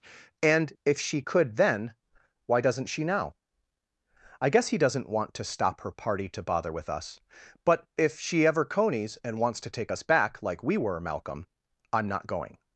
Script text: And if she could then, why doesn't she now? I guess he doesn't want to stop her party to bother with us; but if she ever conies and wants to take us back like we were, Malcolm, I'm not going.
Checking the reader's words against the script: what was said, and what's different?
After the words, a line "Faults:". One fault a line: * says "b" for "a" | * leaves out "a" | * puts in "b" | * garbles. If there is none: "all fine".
And if she could then, why doesn't she now? I guess he doesn't want to stop her party to bother with us; but if she ever conies and wants to take us back like we were, Malcolm, I'm not going.
Faults:
all fine